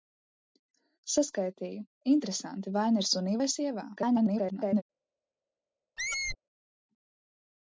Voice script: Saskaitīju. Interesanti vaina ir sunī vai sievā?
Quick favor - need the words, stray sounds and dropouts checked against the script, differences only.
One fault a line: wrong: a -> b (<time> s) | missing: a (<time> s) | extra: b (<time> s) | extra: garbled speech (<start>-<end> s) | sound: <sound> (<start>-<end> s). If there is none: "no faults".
extra: garbled speech (4.0-4.8 s)
sound: squeak (6.0-6.4 s)